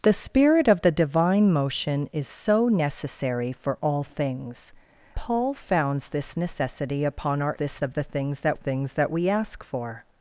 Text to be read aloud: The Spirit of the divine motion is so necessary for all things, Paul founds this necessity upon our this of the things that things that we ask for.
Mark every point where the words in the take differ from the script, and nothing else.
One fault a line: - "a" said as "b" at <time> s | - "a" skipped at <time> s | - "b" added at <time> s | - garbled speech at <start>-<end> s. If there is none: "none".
none